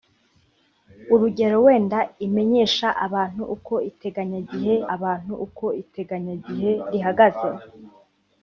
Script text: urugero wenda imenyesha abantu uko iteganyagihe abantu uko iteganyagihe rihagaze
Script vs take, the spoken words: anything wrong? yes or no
no